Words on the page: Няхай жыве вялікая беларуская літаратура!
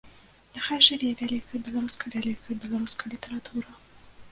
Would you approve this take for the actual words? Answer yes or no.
no